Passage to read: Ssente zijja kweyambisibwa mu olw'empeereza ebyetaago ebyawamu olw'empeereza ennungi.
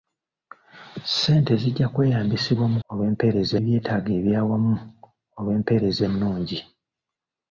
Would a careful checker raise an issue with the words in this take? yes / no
no